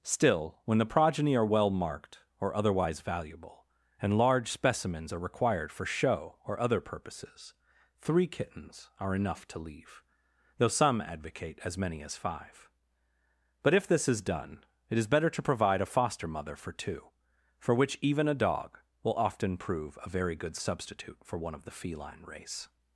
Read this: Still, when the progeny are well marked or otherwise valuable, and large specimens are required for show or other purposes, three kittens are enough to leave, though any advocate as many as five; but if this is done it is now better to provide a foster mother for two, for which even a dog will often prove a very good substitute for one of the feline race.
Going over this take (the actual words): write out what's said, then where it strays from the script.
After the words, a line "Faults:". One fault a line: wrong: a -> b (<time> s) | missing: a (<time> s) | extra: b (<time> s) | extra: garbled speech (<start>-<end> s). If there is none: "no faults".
Still, when the progeny are well marked or otherwise valuable, and large specimens are required for show or other purposes, three kittens are enough to leave, though some advocate as many as five; but if this is done it is better to provide a foster mother for two, for which even a dog will often prove a very good substitute for one of the feline race.
Faults:
wrong: any -> some (10.7 s)
missing: now (15.1 s)